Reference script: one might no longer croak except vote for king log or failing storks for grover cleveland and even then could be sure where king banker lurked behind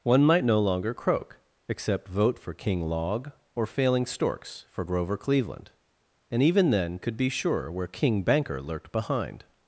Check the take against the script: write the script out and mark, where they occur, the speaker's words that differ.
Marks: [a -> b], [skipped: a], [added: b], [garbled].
one might no longer croak except vote for king log or failing storks for grover cleveland and even then could be sure where king banker lurked behind